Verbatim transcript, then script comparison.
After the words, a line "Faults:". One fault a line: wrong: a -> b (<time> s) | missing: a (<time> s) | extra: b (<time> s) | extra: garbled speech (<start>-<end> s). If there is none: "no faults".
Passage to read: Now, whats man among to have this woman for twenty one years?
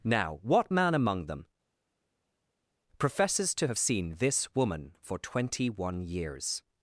Now, what man among them, professes to have seen this woman for twenty one years?
Faults:
wrong: whats -> what (0.4 s)
extra: them professes (1.3 s)
extra: seen (3.8 s)